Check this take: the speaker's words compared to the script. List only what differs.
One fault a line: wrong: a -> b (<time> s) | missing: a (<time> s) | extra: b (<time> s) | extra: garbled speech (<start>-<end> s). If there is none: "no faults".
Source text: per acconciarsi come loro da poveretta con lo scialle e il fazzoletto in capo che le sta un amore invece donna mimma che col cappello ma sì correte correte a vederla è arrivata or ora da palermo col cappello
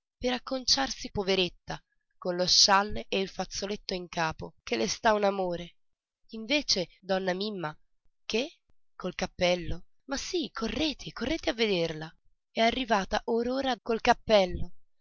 missing: come loro da (1.1 s)
missing: da palermo (13.8 s)